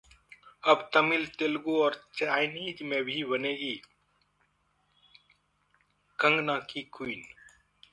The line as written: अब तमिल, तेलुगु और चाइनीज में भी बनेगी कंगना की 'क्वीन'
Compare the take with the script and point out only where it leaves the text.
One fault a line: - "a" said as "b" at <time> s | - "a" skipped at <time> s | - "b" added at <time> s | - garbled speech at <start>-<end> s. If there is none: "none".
none